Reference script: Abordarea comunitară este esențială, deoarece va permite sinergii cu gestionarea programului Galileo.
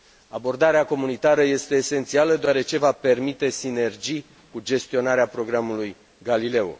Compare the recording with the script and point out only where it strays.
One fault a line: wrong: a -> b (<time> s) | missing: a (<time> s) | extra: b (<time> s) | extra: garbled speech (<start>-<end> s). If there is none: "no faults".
no faults